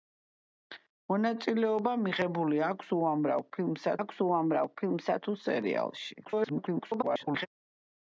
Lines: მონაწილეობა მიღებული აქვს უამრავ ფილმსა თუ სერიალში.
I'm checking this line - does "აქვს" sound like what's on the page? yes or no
yes